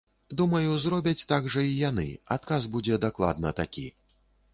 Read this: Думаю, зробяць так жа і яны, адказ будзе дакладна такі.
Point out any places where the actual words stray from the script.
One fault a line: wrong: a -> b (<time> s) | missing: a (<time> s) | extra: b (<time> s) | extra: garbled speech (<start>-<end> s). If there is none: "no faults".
no faults